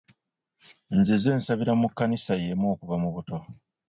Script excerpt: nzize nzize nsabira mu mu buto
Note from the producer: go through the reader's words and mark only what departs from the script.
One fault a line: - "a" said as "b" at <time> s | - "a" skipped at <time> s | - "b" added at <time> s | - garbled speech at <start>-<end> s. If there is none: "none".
- "nzize" skipped at 1.3 s
- "kkanisa y'emu okuva" added at 1.9 s